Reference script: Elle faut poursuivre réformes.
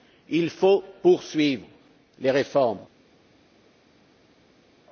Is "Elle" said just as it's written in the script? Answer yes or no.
no